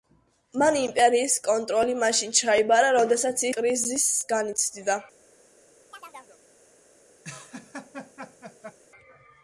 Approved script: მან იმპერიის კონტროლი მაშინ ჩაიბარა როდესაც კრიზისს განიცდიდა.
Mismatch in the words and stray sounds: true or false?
true